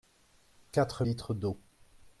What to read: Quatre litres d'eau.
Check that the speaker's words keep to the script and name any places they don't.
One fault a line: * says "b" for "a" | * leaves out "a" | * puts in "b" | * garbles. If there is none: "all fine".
all fine